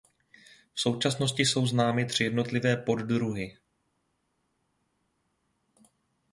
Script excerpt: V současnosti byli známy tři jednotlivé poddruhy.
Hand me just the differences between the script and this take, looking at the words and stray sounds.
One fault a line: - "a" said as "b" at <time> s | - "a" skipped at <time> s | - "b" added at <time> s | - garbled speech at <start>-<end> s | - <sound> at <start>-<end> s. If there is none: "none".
- "byli" said as "jsou" at 1.4 s